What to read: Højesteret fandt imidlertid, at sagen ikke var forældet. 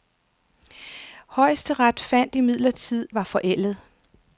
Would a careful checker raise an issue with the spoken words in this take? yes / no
yes